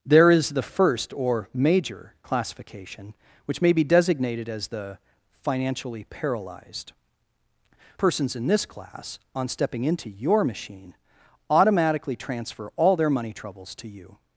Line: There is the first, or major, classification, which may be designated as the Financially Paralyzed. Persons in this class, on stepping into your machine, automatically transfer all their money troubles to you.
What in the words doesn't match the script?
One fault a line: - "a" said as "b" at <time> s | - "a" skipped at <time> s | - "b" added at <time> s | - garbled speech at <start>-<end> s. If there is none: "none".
none